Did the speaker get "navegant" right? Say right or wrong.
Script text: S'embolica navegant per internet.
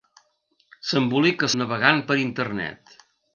right